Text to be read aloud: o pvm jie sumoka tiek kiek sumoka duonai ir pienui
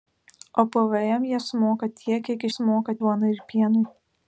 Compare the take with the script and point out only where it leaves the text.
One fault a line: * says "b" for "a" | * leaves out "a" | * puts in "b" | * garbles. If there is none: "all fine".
all fine